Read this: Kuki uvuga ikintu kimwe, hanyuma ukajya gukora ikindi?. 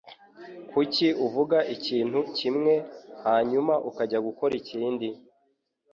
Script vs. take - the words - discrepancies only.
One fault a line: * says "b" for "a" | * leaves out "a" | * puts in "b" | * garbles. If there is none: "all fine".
all fine